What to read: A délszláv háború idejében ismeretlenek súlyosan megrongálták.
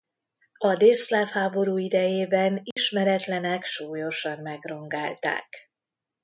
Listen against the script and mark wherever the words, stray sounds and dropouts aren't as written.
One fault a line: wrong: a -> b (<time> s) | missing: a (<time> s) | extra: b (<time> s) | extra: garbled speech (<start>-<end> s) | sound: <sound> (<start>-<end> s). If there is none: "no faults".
sound: dropout (2.7-2.8 s)